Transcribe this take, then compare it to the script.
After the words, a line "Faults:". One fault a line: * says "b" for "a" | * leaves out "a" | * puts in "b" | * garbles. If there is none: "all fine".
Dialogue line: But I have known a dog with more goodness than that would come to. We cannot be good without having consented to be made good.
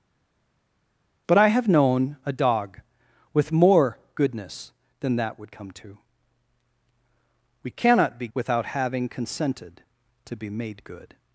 But I have known a dog with more goodness than that would come to. We cannot be without having consented to be made good.
Faults:
* leaves out "good"